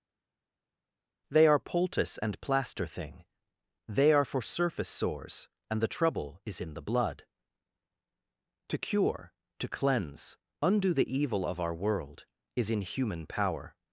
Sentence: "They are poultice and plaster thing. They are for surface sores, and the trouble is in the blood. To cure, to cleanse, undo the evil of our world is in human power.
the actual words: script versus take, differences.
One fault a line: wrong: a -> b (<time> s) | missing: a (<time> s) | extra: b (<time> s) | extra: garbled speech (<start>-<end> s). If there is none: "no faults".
no faults